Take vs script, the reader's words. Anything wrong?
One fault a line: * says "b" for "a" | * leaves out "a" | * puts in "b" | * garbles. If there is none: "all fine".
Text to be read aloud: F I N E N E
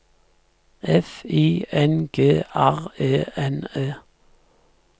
* puts in "G R"